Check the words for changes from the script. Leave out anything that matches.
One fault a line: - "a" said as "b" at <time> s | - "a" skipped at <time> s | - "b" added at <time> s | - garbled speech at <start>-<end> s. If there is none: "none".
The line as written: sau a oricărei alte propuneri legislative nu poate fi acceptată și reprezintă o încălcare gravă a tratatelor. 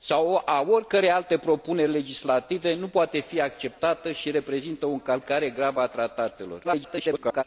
- garbled speech at 6.6-7.4 s